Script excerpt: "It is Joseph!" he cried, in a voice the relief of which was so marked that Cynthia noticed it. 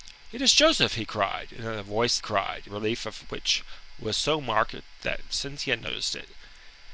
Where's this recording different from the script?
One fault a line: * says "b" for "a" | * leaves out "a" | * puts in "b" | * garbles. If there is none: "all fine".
* says "cried" for "the"